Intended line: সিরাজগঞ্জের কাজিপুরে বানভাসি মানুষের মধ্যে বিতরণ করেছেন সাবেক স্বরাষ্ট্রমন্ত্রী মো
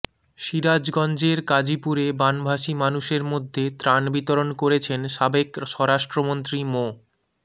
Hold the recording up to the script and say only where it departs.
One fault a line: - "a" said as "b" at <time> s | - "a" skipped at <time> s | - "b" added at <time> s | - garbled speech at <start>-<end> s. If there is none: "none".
- "ত্রাণ" added at 3.8 s